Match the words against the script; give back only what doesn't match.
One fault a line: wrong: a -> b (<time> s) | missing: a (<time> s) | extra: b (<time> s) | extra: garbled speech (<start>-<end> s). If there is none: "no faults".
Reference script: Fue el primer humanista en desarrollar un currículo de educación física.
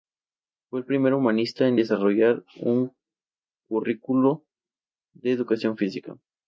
no faults